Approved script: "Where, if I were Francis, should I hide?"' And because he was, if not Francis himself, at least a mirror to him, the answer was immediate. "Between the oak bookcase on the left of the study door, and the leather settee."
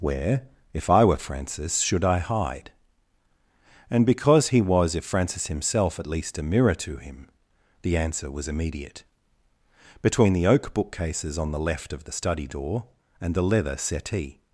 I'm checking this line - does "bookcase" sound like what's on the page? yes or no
no